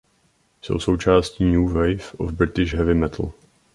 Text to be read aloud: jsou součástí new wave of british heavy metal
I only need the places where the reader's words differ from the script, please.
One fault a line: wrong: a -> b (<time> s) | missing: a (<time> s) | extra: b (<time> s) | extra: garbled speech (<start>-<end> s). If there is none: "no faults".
no faults